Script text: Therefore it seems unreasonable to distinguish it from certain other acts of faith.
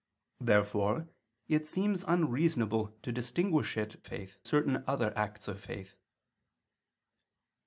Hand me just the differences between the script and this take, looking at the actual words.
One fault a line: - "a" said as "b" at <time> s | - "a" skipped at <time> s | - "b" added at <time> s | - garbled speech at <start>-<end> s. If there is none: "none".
- "from" said as "faith" at 4.0 s